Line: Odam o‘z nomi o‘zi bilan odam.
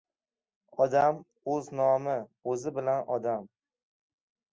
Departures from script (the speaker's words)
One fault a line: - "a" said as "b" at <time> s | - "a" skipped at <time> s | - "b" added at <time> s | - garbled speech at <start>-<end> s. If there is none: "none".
none